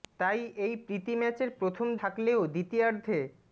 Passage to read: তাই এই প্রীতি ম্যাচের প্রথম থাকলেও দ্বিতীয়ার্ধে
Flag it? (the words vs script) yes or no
no